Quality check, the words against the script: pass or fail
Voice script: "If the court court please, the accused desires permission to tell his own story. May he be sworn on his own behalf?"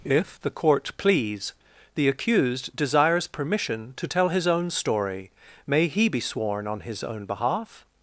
fail